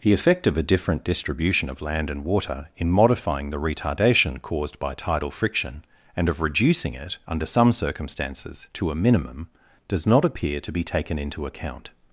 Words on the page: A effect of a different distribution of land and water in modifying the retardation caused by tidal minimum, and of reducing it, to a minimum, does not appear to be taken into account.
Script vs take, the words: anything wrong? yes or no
yes